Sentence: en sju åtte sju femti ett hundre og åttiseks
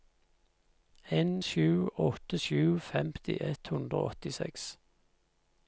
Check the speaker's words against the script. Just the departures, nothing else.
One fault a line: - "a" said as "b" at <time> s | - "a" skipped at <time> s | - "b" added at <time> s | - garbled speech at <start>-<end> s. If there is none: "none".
none